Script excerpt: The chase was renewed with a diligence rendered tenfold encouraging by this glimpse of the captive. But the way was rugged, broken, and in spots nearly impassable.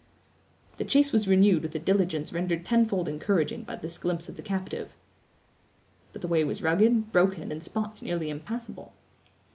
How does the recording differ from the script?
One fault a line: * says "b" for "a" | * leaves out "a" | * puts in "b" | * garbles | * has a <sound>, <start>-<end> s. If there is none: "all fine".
* leaves out "and"